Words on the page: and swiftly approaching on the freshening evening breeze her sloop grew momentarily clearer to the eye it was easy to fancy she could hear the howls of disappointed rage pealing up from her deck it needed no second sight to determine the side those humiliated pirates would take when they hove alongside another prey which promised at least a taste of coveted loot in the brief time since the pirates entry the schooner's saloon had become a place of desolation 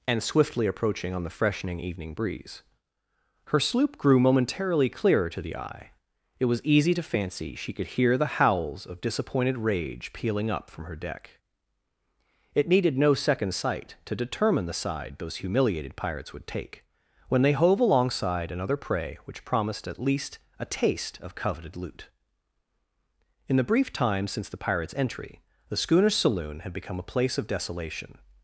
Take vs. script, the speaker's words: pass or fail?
pass